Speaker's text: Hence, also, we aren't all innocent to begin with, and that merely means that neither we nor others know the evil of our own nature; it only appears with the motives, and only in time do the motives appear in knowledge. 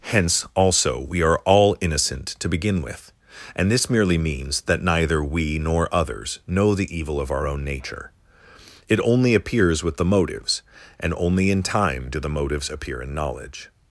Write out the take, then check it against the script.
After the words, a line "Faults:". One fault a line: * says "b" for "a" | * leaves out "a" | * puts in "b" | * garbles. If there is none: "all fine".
Hence, also, we are all innocent to begin with, and this merely means that neither we nor others know the evil of our own nature; it only appears with the motives, and only in time do the motives appear in knowledge.
Faults:
* says "are" for "aren't"
* says "this" for "that"